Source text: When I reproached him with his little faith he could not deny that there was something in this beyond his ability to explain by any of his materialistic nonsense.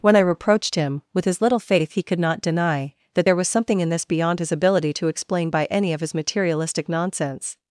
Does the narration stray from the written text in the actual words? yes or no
no